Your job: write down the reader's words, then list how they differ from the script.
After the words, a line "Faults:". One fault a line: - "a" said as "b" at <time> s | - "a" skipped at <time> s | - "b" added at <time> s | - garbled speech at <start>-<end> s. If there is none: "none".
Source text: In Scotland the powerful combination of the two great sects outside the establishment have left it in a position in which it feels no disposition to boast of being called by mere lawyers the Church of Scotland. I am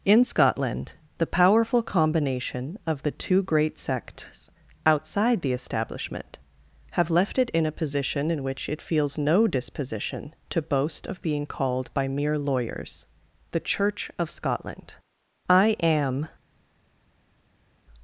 In Scotland the powerful combination of the two great sects outside the establishment have left it in a position in which it feels no disposition to boast of being called by mere lawyers the Church of Scotland. I am
Faults:
none